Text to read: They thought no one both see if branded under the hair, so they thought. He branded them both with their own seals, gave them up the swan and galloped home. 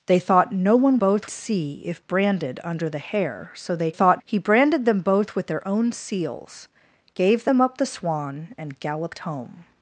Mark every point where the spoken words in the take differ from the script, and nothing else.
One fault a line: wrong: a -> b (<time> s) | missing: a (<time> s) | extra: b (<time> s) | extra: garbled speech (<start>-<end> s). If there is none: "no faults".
no faults